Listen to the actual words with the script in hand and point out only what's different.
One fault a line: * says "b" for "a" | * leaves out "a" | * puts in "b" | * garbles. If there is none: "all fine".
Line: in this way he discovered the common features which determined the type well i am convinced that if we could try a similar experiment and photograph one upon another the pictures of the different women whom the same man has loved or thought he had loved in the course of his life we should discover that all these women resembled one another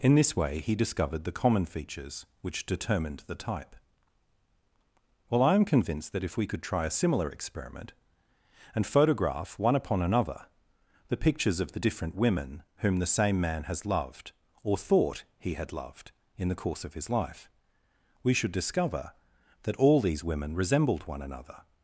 all fine